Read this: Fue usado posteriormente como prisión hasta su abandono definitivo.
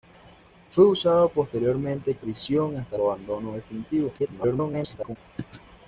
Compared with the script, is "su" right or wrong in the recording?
wrong